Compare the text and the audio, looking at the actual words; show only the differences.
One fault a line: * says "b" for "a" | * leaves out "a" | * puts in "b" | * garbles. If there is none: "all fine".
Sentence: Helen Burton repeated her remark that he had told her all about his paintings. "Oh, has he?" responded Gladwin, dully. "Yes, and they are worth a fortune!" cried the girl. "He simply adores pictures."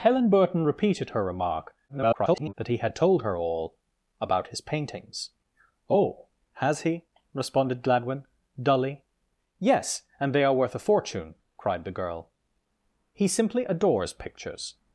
* garbles